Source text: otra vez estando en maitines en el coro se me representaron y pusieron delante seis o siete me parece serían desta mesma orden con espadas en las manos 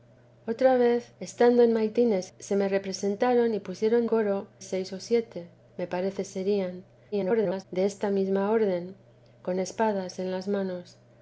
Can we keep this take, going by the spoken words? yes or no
no